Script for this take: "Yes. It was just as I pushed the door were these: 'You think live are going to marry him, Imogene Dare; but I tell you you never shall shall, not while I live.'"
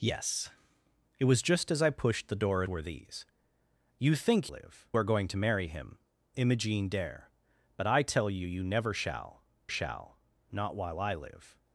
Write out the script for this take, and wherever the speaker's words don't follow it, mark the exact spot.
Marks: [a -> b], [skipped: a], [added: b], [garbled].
"Yes. It was just as I pushed the door were these: 'You think live are going to marry him, Imogene Dare; but I tell you you never shall shall, not while I live.'"